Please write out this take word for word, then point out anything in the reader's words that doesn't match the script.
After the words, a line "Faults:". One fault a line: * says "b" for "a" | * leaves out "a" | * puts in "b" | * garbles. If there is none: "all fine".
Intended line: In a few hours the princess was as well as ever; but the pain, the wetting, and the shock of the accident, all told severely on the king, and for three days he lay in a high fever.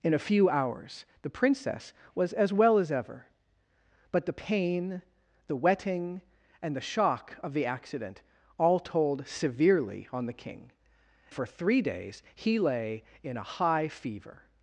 In a few hours the princess was as well as ever; but the pain, the wetting, and the shock of the accident, all told severely on the king, for three days he lay in a high fever.
Faults:
* leaves out "and"